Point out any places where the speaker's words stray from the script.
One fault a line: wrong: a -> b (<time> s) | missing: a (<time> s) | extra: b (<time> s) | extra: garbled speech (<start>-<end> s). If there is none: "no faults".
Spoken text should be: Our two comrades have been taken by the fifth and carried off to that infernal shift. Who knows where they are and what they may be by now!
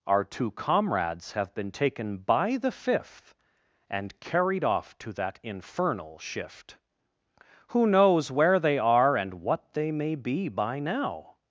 no faults